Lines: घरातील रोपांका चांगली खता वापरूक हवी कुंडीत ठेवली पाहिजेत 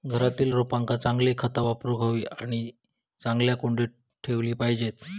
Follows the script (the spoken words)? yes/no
no